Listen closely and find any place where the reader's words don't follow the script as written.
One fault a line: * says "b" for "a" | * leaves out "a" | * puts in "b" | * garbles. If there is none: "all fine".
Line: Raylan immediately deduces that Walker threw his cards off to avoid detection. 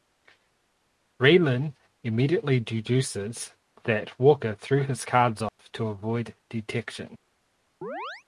all fine